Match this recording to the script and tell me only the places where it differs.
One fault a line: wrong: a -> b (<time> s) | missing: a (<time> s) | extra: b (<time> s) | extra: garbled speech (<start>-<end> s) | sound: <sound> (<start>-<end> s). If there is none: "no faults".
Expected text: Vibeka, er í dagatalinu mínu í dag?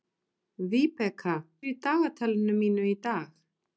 no faults